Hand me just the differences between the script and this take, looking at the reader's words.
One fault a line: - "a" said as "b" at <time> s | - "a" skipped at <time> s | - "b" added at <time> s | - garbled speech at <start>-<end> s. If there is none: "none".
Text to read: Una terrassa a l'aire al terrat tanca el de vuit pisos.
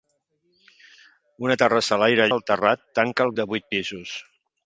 none